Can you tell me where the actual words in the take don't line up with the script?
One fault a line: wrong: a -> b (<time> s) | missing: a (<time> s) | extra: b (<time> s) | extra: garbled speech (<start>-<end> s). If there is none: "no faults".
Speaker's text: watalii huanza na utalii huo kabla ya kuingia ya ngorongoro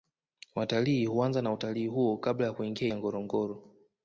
no faults